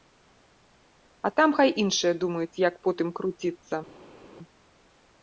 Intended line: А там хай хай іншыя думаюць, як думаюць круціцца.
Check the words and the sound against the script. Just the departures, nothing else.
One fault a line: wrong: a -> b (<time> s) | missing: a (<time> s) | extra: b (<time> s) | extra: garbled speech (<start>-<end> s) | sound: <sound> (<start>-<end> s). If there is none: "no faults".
missing: хай (1.7 s)
wrong: думаюць -> потым (2.9 s)